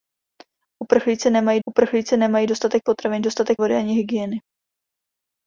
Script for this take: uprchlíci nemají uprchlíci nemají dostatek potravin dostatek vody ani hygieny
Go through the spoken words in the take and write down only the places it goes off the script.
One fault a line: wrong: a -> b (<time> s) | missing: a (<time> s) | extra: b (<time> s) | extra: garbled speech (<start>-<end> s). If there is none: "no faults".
no faults